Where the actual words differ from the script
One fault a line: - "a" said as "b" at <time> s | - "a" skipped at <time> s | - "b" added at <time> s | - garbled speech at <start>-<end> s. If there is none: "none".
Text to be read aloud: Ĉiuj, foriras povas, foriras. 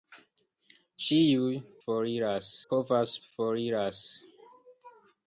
none